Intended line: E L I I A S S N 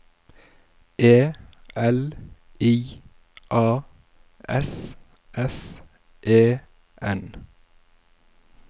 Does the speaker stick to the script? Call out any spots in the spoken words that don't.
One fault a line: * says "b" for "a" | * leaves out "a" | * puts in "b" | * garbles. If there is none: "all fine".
* leaves out "I"
* puts in "E"